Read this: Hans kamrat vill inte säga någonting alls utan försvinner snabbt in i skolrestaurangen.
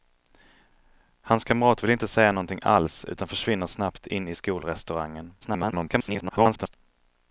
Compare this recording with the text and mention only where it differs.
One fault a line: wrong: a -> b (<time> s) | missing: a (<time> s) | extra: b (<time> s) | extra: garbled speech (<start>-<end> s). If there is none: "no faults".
extra: garbled speech (5.4-6.7 s)